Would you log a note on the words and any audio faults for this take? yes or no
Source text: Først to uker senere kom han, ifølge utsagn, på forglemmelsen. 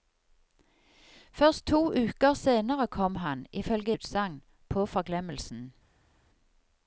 no